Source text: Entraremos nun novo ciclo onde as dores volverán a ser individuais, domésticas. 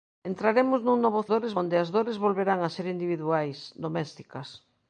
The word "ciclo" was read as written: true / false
false